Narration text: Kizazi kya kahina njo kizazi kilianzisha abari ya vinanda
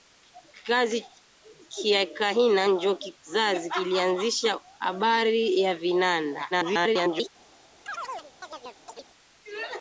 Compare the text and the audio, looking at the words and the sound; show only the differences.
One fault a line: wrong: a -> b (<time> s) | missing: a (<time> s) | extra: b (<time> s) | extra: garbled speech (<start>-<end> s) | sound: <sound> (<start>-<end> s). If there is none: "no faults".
extra: garbled speech (6.5-7.3 s)
sound: chirp (7.9-9.1 s)